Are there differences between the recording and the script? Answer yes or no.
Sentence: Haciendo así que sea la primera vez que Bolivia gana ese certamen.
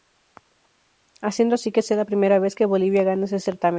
no